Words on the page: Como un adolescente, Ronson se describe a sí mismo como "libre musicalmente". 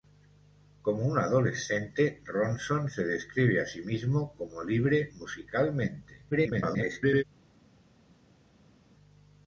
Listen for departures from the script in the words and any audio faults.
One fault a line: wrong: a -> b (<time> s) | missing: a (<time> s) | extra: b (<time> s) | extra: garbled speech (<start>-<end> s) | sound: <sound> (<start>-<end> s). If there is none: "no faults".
extra: garbled speech (6.3-7.2 s)